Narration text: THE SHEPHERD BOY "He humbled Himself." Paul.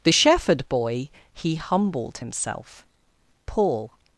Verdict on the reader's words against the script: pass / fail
pass